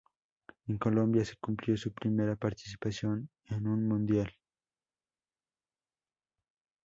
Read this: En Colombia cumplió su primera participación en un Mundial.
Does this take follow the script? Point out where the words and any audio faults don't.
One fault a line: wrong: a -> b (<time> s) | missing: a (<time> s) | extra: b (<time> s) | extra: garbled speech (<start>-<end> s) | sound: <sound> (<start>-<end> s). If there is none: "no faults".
extra: se (1.2 s)